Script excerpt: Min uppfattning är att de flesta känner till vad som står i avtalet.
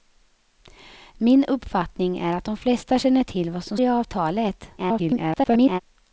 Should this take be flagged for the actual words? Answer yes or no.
yes